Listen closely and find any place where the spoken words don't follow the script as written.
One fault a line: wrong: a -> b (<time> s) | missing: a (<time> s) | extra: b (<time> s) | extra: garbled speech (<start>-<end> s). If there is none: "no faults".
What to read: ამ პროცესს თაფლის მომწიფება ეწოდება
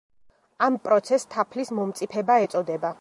no faults